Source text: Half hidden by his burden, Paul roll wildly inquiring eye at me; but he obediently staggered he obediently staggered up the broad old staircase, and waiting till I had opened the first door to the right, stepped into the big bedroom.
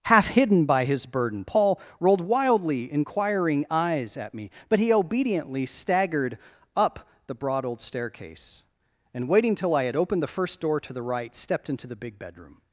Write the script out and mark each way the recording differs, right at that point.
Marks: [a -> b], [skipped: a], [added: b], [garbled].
Half hidden by his burden, Paul [roll -> rolled] wildly inquiring [eye -> eyes] at me; but he obediently staggered [skipped: he obediently staggered] up the broad old staircase, and waiting till I had opened the first door to the right, stepped into the big bedroom.